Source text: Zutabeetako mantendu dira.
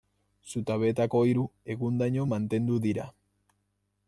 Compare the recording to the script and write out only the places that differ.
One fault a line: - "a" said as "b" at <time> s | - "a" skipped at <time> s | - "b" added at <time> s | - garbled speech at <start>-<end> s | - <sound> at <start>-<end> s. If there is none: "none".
- "hiru egundaino" added at 1.3 s